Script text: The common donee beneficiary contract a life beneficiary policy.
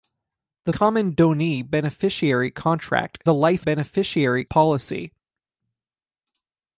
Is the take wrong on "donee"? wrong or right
right